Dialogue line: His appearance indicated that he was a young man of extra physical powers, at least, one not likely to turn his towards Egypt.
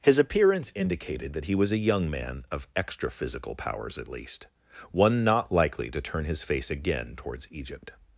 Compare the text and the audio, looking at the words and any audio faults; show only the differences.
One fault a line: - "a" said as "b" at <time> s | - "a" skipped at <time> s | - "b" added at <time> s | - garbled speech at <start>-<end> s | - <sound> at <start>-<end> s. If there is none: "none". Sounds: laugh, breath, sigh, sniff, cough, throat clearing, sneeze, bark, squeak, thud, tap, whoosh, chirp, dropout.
- "face again" added at 6.4 s